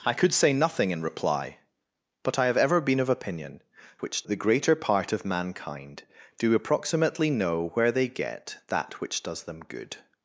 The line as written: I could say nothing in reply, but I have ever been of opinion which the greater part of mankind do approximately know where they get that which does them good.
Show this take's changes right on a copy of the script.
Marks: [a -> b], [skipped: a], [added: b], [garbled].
I could say nothing in reply, but I have ever been of opinion which the greater part of mankind do approximately know where they get that which does them good.